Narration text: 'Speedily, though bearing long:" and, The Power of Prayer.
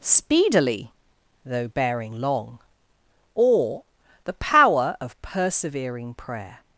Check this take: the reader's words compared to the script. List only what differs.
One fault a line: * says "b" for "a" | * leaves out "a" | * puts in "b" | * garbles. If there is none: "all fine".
* says "or" for "and"
* puts in "Persevering"